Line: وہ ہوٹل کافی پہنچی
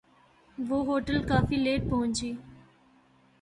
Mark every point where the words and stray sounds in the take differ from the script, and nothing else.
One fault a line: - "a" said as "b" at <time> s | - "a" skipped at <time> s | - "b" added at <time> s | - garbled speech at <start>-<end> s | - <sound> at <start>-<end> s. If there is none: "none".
- "لیٹ" added at 1.6 s